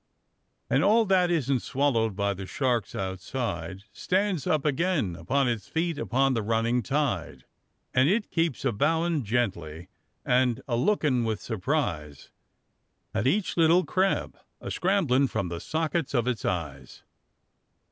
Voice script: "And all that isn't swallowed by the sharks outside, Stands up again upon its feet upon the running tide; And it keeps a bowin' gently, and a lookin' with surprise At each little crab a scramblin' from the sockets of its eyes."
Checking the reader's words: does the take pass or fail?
pass